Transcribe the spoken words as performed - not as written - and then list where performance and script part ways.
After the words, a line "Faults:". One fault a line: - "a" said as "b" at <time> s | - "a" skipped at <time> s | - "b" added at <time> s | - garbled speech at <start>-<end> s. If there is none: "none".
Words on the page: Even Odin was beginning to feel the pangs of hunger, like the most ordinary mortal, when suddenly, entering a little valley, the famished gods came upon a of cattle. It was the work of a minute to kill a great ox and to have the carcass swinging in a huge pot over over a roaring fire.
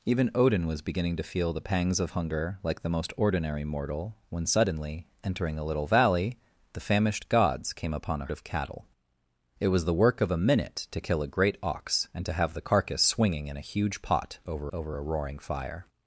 Even Odin was beginning to feel the pangs of hunger, like the most ordinary mortal, when suddenly, entering a little valley, the famished gods came upon a of cattle. It was the work of a minute to kill a great ox and to have the carcass swinging in a huge pot over over a roaring fire.
Faults:
none